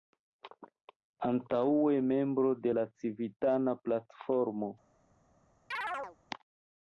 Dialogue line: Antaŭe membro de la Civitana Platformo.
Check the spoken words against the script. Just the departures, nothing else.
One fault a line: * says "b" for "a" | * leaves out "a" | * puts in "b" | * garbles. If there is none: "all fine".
all fine